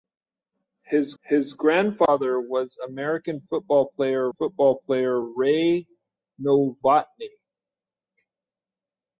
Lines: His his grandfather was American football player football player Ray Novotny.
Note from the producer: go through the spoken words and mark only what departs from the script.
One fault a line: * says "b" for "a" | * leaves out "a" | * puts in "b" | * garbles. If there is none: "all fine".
all fine